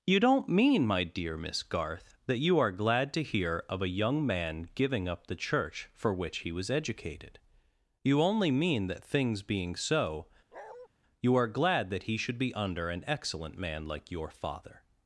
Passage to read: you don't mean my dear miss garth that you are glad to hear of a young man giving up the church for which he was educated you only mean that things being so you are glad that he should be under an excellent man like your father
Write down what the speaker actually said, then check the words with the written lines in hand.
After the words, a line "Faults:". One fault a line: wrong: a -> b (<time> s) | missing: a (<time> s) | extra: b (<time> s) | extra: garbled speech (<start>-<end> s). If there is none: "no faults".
you don't mean my dear miss garth that you are glad to hear of a young man giving up the church for which he was educated you only mean that things being so you are glad that he should be under an excellent man like your father
Faults:
no faults